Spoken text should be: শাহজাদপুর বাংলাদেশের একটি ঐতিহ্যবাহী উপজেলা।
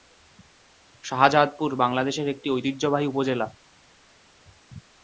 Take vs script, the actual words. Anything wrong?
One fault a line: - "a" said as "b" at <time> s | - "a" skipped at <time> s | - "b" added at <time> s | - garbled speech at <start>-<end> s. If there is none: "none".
none